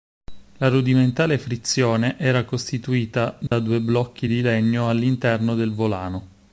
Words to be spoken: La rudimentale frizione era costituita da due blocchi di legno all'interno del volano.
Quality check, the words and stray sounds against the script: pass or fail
fail